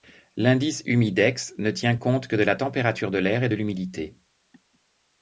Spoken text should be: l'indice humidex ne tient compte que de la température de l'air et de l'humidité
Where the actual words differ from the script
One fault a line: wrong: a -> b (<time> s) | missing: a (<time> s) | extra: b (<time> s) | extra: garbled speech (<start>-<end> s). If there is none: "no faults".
no faults